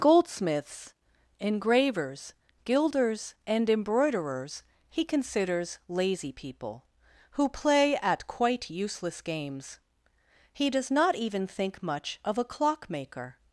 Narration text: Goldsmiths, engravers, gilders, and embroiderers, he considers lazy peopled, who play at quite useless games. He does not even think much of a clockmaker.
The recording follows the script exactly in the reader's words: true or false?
false